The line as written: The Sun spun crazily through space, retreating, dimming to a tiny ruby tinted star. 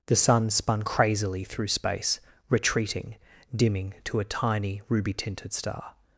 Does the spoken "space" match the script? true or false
true